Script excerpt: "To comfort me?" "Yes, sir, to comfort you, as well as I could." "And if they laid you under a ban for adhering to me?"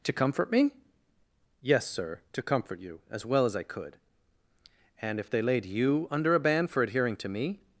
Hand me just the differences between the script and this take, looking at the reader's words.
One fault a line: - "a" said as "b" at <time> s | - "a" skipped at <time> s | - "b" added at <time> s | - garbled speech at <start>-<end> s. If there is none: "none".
none